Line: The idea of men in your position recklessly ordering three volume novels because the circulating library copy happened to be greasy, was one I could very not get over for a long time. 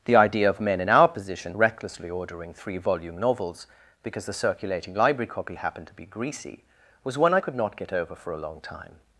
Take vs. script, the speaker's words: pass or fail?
fail